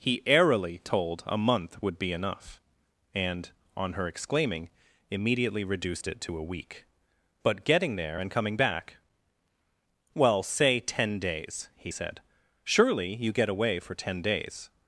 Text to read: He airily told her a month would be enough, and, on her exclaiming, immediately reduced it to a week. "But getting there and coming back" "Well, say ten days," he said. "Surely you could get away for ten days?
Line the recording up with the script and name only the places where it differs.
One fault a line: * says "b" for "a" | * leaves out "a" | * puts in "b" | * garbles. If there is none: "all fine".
* leaves out "her"
* leaves out "could"